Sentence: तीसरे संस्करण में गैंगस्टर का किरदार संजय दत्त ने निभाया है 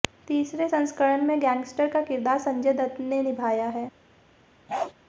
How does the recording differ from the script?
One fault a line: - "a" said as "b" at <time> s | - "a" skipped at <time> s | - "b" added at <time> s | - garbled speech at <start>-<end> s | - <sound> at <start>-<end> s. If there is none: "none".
- bark at 4.7-4.9 s